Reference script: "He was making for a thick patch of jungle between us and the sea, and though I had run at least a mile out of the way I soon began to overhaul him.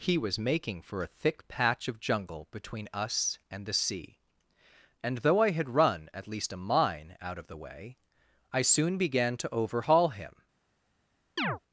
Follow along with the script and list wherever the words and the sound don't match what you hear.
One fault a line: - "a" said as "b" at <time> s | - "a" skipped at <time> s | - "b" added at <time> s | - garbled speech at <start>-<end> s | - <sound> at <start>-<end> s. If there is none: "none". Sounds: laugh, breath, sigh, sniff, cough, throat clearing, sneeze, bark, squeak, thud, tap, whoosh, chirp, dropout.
- "mile" said as "mine" at 6.6 s
- chirp at 11.4-11.6 s